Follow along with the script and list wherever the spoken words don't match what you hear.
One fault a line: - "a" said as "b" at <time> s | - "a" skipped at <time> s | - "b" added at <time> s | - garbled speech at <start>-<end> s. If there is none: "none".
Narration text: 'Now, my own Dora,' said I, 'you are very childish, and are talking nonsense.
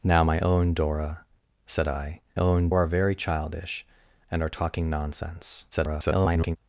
- "you" said as "own" at 2.3 s
- garbled speech at 5.7-6.6 s